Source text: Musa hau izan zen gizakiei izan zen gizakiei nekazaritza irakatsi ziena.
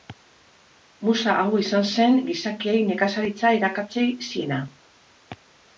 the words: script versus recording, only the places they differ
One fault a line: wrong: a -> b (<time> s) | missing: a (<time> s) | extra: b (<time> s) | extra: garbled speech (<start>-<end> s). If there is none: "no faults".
missing: izan zen gizakiei (2.8 s)